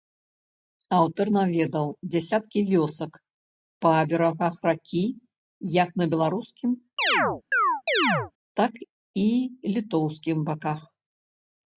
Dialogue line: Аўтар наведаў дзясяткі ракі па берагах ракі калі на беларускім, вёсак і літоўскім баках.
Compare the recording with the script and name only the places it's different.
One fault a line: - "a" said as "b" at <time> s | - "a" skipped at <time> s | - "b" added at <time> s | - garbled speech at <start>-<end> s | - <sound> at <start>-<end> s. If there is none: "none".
- "ракі" said as "вёсак" at 2.7 s
- "калі" said as "як" at 5.8 s
- chirp at 7.0-8.3 s
- "вёсак" said as "так" at 8.6 s